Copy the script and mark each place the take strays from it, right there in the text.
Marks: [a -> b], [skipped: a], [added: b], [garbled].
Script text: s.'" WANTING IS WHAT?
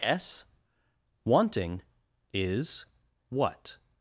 s.'" WANTING IS WHAT?